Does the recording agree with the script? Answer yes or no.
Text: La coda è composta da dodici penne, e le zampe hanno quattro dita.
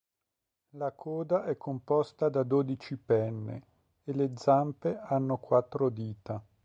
yes